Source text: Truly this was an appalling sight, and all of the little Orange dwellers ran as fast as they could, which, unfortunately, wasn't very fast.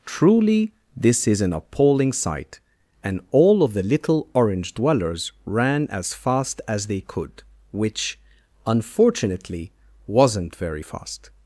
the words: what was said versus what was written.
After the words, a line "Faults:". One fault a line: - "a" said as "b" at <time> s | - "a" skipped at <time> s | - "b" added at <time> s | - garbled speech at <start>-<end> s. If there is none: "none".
Truly this is an appalling sight, and all of the little Orange dwellers ran as fast as they could, which, unfortunately, wasn't very fast.
Faults:
- "was" said as "is" at 1.3 s